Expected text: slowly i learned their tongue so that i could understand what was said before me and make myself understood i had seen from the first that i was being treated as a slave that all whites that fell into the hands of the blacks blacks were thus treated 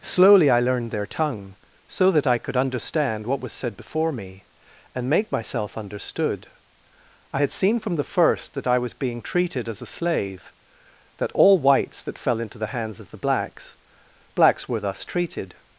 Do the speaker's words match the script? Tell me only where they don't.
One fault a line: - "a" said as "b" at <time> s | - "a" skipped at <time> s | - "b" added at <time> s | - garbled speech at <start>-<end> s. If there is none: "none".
none